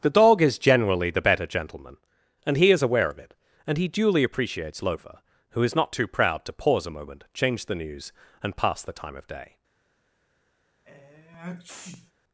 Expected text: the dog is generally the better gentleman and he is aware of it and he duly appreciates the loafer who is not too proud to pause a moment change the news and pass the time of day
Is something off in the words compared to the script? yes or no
yes